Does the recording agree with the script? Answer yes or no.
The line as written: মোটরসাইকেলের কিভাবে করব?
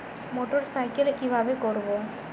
yes